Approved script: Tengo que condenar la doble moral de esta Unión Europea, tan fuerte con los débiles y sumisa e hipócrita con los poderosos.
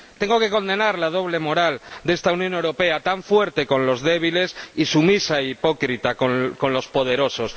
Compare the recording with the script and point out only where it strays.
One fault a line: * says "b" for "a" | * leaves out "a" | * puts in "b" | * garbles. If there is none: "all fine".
all fine